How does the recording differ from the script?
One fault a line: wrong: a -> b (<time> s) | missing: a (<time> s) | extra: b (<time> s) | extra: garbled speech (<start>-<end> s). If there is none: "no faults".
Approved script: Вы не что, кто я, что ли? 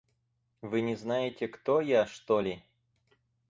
wrong: что -> знаете (0.9 s)